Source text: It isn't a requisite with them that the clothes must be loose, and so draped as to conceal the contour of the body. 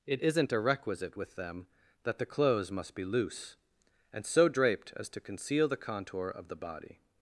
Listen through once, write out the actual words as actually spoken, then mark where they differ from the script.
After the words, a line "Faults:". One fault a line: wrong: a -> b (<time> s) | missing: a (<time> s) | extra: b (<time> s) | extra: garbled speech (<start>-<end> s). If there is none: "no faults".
It isn't a requisite with them that the clothes must be loose, and so draped as to conceal the contour of the body.
Faults:
no faults